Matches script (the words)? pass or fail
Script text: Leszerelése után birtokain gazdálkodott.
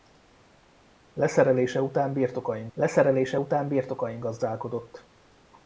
fail